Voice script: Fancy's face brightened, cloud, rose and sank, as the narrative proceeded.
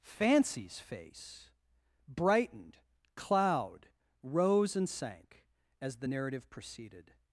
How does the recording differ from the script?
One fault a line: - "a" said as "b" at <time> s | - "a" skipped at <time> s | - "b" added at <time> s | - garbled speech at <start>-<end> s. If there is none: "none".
none